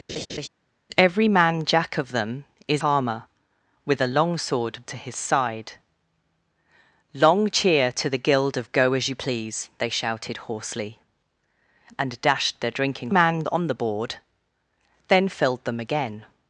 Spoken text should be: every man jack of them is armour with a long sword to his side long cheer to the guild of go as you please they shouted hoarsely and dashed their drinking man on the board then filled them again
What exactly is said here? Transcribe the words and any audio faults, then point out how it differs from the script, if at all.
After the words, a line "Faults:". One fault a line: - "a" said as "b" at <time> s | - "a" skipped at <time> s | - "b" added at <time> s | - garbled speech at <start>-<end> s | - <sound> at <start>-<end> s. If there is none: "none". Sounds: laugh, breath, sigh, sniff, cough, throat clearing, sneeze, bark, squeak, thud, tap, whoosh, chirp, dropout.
every man jack of them is armour with a long sword to his side long cheer to the guild of go as you please they shouted hoarsely and dashed their drinking man on the board then filled them again
Faults:
- laugh at 0.1-0.5 s